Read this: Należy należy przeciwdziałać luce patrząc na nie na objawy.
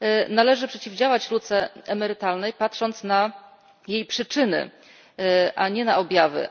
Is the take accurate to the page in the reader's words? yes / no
no